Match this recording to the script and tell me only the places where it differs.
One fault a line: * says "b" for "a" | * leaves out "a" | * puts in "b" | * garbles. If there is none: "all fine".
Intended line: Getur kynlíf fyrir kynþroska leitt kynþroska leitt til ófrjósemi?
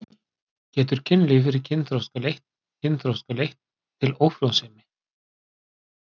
all fine